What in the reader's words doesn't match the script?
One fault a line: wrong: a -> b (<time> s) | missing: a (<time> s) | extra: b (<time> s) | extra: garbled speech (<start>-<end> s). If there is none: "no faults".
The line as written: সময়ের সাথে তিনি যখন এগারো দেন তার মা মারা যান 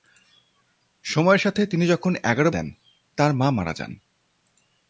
no faults